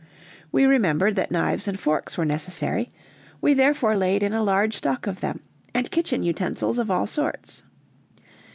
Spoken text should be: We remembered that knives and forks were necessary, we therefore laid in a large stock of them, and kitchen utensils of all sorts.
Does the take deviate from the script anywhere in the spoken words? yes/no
no